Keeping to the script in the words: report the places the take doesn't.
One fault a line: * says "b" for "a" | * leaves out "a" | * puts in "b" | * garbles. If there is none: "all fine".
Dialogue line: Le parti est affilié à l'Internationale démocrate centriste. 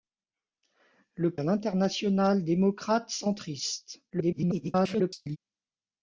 * leaves out "parti est affilié"
* garbles